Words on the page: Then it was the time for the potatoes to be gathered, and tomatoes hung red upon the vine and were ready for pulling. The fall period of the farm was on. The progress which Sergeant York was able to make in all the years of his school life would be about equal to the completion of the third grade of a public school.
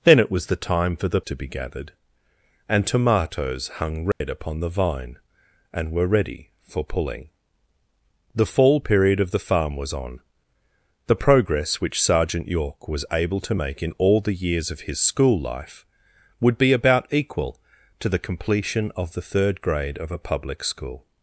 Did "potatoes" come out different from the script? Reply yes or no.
yes